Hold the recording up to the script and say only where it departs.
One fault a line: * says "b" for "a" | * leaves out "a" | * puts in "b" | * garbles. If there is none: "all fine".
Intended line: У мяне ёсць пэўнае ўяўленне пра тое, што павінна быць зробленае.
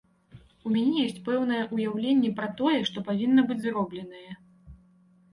all fine